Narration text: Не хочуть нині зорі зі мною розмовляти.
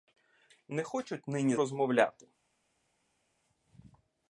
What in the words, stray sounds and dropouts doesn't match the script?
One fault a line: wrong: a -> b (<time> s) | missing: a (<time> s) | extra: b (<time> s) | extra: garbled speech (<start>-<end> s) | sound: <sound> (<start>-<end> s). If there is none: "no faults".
missing: зорі зі мною (1.6 s)